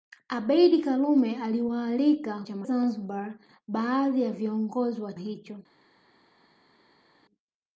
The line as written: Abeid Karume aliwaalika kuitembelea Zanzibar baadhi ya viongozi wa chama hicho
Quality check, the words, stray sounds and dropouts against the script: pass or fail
fail